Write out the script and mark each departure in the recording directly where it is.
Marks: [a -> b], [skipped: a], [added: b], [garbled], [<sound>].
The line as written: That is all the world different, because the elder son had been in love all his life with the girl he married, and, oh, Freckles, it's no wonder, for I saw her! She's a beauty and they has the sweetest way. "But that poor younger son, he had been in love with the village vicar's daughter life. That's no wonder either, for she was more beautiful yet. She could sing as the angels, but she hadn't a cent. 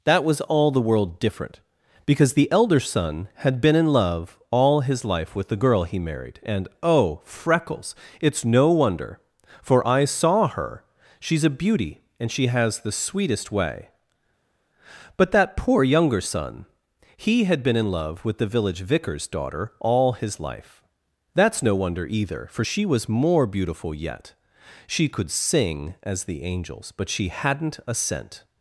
That [is -> was] all the world different, because the elder son had been in love all his life with the girl he married, and, oh, Freckles, it's no wonder, for I saw her! She's a beauty and [they -> she] has the sweetest way. "But that poor younger son, he had been in love with the village vicar's daughter [added: all his] life. That's no wonder either, for she was more beautiful yet. She could sing as the angels, but she hadn't a cent.